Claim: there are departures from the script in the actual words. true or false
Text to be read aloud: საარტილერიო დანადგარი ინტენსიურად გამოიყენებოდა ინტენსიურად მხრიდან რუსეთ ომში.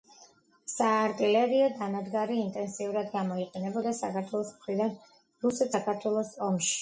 true